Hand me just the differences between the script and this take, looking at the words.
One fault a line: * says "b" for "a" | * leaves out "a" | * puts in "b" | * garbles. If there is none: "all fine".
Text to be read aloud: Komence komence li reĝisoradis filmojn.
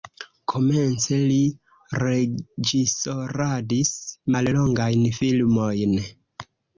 * leaves out "komence"
* puts in "mallongajn"